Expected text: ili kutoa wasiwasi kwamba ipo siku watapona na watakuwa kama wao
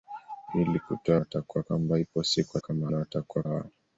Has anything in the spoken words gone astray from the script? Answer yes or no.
yes